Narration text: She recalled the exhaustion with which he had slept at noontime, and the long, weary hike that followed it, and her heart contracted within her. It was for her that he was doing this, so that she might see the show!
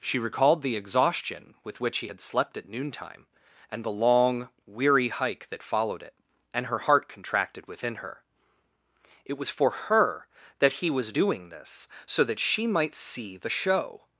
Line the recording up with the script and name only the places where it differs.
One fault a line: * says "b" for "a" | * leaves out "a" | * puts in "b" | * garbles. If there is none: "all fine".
all fine